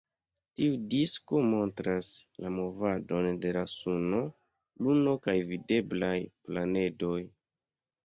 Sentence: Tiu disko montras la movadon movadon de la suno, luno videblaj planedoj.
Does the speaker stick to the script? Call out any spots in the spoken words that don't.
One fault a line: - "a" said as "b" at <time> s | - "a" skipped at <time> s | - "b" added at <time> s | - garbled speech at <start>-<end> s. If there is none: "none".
- "movadon" skipped at 3.3 s
- "kaj" added at 5.3 s